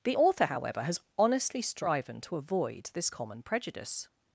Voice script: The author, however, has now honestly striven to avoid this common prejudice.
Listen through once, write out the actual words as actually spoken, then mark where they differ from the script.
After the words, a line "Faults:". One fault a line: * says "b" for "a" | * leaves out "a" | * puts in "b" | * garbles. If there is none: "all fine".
The author, however, has honestly striven to avoid this common prejudice.
Faults:
* leaves out "now"